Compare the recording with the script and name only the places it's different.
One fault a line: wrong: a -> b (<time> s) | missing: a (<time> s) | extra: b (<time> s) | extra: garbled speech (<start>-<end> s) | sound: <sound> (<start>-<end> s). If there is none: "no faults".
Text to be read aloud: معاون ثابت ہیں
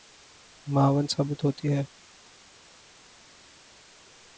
extra: ہوتی (1.4 s)